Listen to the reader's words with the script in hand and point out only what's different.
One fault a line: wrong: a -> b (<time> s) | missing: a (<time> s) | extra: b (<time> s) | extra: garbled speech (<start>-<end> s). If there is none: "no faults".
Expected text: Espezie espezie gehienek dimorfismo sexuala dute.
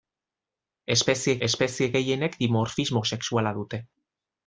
no faults